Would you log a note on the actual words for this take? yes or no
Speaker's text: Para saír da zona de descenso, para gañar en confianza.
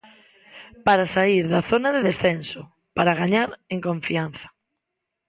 no